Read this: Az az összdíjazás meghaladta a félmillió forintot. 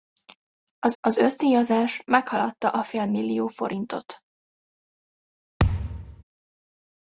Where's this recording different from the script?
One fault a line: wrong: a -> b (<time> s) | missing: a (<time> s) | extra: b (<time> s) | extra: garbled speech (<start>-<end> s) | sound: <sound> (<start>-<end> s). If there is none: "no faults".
sound: thud (5.6-6.2 s)